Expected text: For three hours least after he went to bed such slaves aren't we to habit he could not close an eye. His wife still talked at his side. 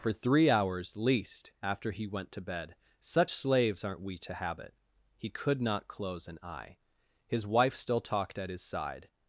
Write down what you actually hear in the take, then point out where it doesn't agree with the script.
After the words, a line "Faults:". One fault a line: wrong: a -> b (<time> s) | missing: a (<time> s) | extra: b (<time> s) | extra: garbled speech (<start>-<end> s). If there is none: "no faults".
For three hours least after he went to bed such slaves aren't we to habit he could not close an eye. His wife still talked at his side.
Faults:
no faults